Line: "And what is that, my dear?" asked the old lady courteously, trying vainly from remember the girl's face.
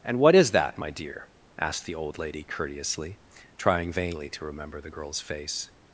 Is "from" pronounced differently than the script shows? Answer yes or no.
yes